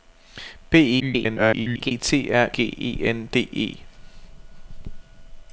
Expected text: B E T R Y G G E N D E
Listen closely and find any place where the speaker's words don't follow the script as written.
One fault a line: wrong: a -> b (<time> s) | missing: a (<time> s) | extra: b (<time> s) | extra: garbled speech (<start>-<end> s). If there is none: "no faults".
extra: garbled speech (1.0-1.9 s)
missing: Y G (2.5 s)